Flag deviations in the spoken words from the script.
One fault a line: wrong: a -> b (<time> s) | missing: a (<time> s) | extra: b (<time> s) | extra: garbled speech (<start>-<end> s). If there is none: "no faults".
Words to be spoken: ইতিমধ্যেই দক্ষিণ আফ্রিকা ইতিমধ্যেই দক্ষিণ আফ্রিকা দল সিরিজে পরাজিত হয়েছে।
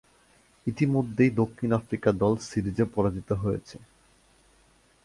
missing: ইতিমধ্যেই দক্ষিণ আফ্রিকা (2.1 s)